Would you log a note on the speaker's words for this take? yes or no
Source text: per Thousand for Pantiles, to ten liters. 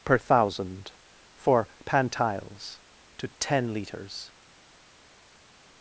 no